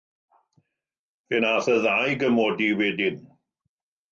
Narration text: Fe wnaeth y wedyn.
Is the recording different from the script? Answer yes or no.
yes